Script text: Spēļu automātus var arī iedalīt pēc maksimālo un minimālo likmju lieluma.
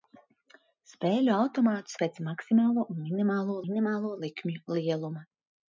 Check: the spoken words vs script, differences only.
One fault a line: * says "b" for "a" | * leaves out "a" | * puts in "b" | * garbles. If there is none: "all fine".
* leaves out "var arī iedalīt"
* puts in "minimālo"